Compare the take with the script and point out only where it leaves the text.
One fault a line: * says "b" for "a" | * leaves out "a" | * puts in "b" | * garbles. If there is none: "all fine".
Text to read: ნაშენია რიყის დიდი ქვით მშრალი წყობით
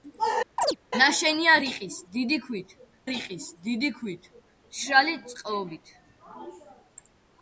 * puts in "რიყის დიდი ქვით"